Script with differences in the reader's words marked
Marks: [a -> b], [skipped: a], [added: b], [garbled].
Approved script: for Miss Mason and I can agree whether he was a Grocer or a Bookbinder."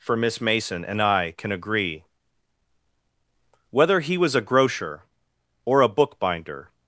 for Miss Mason and I can agree whether he was a Grocer or a Bookbinder."